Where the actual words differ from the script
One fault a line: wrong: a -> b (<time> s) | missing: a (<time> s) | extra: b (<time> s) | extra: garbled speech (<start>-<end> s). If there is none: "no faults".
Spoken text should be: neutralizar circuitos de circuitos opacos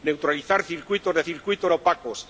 no faults